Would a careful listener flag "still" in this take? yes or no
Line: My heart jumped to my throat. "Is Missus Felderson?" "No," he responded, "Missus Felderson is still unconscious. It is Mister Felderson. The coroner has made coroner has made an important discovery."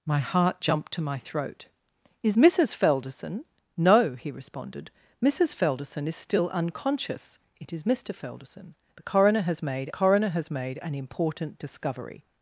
no